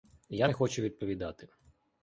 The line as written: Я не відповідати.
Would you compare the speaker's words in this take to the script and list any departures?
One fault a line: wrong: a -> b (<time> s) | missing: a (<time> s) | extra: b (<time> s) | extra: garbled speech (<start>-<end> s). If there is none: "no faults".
extra: хочу (0.5 s)